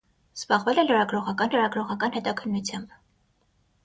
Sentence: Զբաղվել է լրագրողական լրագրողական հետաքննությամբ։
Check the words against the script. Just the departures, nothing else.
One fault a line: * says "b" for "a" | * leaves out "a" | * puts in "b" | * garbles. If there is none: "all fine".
all fine